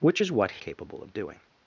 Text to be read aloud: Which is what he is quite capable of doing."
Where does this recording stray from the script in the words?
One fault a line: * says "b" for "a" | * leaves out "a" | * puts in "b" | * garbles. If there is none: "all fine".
* leaves out "he is quite"